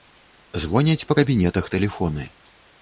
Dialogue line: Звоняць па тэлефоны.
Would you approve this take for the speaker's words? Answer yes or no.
no